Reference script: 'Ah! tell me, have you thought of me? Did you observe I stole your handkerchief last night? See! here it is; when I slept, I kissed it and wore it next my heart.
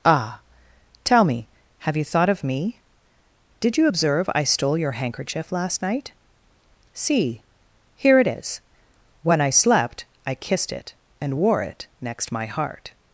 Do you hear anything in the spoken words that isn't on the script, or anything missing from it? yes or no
no